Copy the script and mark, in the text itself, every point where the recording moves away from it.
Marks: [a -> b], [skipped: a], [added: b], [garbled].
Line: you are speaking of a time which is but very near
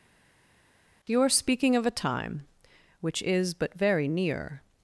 you are speaking of a time which is but very near